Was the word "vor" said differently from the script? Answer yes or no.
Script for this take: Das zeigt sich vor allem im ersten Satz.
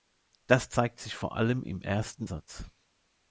no